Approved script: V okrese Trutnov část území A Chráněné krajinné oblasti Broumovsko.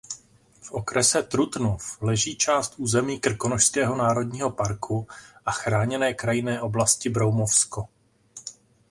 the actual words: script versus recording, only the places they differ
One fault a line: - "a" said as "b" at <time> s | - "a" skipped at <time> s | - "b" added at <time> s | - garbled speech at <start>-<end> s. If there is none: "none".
- "leží" added at 2.0 s
- "Krkonošského národního parku" added at 3.2 s